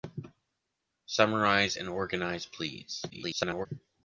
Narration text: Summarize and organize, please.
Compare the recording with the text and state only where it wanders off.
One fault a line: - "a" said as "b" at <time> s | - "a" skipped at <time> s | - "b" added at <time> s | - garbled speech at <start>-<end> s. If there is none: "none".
- garbled speech at 3.1-3.7 s